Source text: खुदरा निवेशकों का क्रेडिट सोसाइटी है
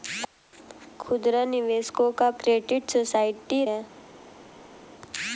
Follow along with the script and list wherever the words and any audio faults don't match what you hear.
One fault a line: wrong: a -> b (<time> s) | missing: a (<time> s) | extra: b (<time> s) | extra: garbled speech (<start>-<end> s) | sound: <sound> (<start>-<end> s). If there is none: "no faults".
no faults